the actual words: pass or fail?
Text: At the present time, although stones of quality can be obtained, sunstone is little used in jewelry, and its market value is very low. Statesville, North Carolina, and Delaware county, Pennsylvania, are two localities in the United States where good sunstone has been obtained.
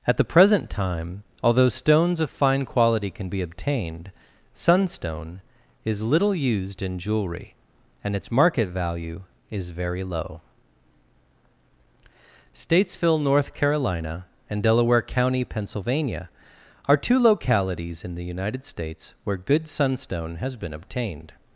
fail